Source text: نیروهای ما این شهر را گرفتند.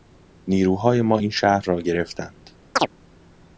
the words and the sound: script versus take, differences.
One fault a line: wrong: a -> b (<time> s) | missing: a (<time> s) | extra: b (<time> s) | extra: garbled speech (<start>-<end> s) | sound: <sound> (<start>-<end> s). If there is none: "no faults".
sound: chirp (2.8-2.9 s)